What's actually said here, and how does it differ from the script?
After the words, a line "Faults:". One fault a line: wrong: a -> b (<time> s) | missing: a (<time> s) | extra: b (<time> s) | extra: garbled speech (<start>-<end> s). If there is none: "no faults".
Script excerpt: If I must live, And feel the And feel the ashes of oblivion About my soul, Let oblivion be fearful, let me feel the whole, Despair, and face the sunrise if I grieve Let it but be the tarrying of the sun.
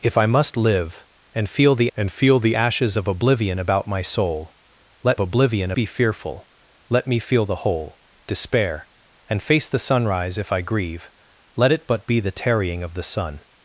If I must live, And feel the And feel the ashes of oblivion About my soul, Let oblivion be fearful, let me feel the whole, Despair, and face the sunrise if I grieve Let it but be the tarrying of the sun.
Faults:
no faults